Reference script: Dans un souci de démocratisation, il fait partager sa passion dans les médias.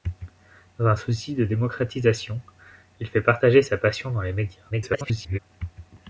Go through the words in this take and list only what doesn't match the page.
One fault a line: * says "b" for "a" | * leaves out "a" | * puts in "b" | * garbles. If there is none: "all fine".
* garbles